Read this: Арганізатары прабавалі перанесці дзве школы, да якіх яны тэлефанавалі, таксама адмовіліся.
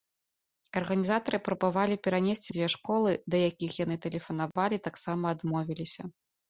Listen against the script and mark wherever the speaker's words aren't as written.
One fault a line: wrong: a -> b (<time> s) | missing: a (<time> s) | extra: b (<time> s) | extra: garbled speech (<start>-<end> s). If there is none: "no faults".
no faults